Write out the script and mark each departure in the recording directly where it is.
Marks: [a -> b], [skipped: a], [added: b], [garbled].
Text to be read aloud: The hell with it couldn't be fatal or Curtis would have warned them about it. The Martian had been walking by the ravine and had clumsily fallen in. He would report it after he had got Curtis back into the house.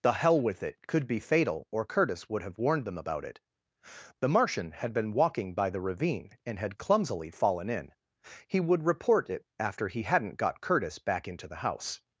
The hell with it [couldn't -> could] be fatal or Curtis would have warned them about it. The Martian had been walking by the ravine and had clumsily fallen in. He would report it after he [had -> hadn't] got Curtis back into the house.